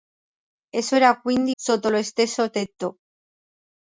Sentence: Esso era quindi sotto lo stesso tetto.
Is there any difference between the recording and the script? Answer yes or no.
no